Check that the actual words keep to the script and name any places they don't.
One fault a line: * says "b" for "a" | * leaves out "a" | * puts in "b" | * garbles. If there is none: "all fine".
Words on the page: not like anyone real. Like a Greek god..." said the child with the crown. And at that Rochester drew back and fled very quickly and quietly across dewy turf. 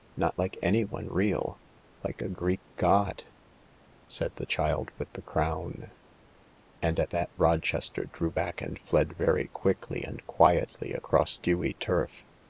all fine